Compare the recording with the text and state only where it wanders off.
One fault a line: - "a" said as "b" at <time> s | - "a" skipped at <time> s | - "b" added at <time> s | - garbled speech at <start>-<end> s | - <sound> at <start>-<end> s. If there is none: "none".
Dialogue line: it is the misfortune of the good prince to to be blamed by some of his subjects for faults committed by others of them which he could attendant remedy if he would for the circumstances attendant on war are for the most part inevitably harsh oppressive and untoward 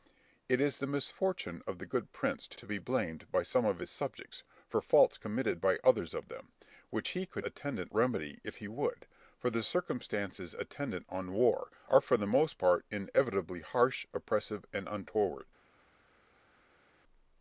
none